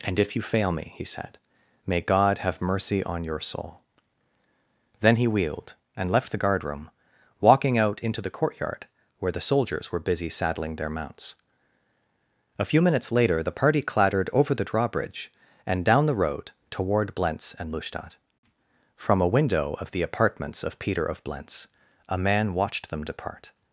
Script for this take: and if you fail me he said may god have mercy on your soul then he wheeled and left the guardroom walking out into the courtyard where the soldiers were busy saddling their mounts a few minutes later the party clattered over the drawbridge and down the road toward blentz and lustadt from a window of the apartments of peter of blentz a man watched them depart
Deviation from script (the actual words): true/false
false